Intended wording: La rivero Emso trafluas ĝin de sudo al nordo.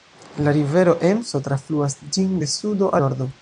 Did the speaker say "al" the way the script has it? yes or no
no